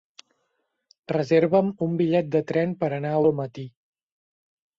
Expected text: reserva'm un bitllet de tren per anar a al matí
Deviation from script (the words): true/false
false